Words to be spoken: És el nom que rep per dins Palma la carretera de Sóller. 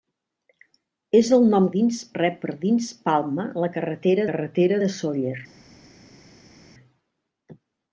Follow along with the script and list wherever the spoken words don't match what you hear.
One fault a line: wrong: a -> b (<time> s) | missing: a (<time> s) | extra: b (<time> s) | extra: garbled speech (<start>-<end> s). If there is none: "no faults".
wrong: que -> dins (1.8 s)
extra: carretera (4.3 s)